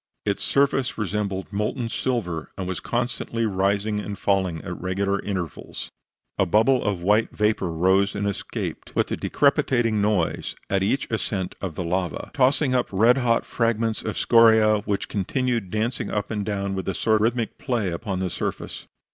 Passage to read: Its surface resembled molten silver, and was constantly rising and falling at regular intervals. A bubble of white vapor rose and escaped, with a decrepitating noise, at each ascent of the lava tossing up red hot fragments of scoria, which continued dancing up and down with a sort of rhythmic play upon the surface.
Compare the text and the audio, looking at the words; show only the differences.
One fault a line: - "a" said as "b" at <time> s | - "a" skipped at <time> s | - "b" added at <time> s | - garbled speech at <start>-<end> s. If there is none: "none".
- "of" skipped at 17.2 s